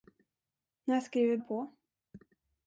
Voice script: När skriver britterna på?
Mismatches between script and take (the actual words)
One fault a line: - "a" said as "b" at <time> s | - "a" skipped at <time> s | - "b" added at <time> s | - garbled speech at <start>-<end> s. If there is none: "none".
- "britterna" skipped at 1.4 s